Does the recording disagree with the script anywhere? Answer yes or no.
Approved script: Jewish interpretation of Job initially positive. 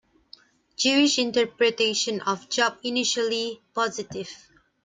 no